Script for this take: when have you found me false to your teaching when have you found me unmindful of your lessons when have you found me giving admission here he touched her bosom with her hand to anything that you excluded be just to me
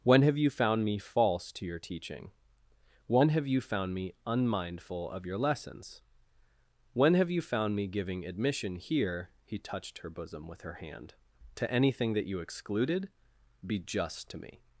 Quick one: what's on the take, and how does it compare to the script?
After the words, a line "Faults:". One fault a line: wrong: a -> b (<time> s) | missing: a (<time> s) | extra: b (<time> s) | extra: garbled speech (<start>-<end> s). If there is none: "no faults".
when have you found me false to your teaching when have you found me unmindful of your lessons when have you found me giving admission here he touched her bosom with her hand to anything that you excluded be just to me
Faults:
no faults